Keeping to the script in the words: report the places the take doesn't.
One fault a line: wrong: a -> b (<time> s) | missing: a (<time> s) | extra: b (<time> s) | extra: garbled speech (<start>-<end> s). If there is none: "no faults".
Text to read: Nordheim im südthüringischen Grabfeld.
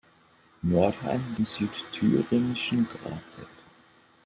no faults